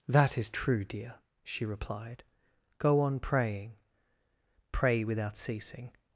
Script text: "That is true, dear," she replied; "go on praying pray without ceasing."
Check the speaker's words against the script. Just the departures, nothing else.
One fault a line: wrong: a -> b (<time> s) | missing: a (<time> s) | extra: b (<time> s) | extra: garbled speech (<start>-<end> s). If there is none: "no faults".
no faults